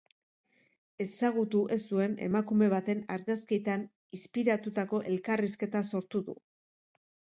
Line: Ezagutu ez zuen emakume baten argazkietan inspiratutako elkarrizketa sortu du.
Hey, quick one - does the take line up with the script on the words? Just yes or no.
yes